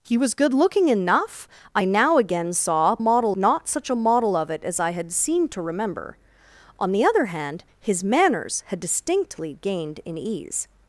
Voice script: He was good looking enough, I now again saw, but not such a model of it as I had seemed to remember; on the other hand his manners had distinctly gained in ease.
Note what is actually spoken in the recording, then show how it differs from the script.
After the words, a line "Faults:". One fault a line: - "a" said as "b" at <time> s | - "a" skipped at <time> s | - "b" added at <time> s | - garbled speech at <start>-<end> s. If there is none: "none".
He was good looking enough, I now again saw, model not such a model of it as I had seemed to remember; on the other hand his manners had distinctly gained in ease.
Faults:
- "but" said as "model" at 3.0 s